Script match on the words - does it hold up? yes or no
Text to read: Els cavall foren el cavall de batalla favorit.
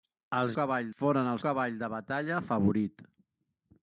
yes